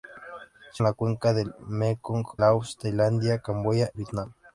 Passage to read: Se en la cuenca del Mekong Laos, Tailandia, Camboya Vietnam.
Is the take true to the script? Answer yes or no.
yes